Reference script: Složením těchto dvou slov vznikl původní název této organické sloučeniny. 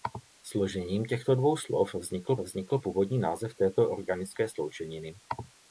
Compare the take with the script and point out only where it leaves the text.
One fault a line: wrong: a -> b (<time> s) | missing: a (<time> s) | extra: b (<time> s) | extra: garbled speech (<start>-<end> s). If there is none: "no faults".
extra: vznikl (2.4 s)